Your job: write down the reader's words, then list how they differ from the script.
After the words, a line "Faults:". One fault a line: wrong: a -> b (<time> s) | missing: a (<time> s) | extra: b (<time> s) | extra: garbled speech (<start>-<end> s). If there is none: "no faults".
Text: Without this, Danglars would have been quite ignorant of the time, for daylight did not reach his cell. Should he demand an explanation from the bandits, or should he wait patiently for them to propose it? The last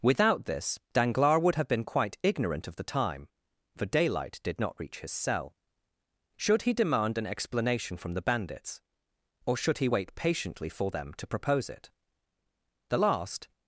Without this, Danglars would have been quite ignorant of the time, for daylight did not reach his cell. Should he demand an explanation from the bandits, or should he wait patiently for them to propose it? The last
Faults:
no faults